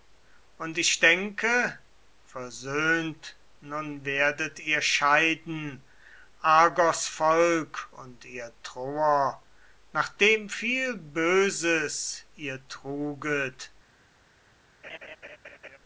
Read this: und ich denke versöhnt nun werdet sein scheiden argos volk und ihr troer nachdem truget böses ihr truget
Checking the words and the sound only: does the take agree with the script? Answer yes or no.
no